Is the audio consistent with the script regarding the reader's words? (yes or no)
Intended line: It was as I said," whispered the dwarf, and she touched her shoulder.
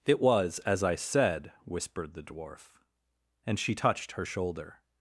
yes